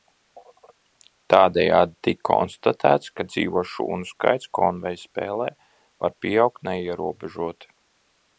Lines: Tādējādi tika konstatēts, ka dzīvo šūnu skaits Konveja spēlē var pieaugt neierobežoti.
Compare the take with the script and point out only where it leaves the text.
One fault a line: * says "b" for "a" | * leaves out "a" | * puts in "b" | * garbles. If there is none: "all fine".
all fine